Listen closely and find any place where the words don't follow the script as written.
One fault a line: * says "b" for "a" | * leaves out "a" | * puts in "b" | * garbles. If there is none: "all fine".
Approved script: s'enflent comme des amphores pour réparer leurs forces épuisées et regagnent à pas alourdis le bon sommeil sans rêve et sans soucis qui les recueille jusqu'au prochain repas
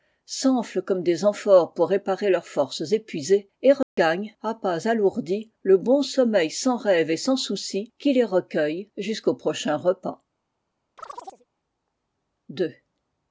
all fine